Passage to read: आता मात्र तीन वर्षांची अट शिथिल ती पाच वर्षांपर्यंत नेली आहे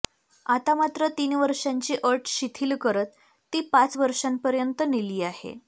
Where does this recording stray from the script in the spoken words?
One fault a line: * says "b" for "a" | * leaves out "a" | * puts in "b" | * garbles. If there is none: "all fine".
* puts in "करत"